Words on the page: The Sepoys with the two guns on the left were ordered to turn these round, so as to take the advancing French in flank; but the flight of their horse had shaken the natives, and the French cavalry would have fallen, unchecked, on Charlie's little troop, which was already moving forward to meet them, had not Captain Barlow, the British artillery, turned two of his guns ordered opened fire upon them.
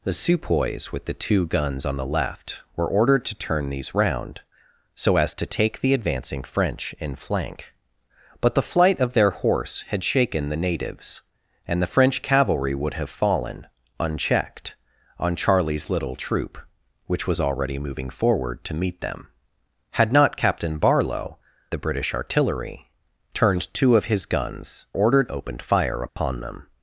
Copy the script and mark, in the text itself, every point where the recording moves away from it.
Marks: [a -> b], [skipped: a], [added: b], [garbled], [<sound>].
The Sepoys with the two guns on the left were ordered to turn these round, so as to take the advancing French in flank; but the flight of their horse had shaken the natives, and the French cavalry would have fallen, unchecked, on Charlie's little troop, which was already moving forward to meet them, had not Captain Barlow, the British artillery, turned two of his guns ordered opened fire upon [dropout] them.